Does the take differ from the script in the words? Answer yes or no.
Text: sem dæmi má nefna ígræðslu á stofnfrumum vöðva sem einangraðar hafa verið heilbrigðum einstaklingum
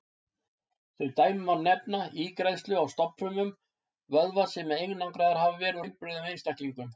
no